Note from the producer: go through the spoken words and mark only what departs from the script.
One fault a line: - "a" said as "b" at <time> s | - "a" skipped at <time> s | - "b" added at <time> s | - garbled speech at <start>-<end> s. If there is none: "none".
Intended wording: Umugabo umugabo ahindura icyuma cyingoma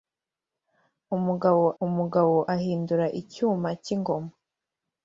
none